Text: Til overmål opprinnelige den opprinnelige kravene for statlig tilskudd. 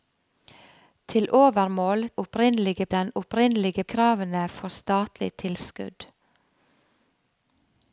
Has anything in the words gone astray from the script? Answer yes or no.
no